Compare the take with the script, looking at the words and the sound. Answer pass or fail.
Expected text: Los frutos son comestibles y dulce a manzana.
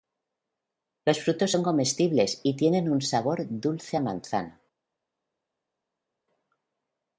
fail